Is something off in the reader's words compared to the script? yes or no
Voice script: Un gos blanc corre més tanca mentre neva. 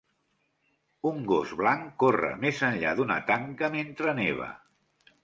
yes